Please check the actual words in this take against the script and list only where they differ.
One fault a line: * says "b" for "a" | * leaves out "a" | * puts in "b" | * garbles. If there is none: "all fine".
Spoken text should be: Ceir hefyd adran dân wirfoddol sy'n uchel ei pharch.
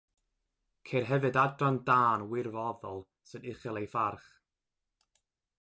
all fine